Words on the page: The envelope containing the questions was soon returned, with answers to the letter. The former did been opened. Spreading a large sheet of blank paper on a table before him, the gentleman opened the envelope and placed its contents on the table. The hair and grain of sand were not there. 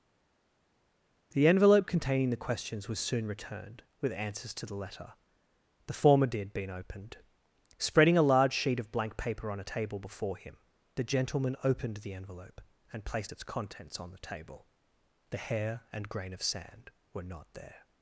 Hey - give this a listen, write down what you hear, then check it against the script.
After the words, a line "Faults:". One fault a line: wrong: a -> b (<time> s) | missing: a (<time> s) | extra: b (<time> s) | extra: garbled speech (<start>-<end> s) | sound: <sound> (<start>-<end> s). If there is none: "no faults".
The envelope containing the questions was soon returned, with answers to the letter. The former did been opened. Spreading a large sheet of blank paper on a table before him, the gentleman opened the envelope and placed its contents on the table. The hair and grain of sand were not there.
Faults:
no faults